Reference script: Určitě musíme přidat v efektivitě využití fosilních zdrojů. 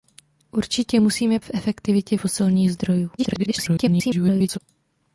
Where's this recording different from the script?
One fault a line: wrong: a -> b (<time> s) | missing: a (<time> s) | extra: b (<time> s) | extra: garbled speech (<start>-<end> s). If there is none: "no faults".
missing: přidat (1.4 s)
missing: využití (2.2 s)
extra: garbled speech (3.2-4.6 s)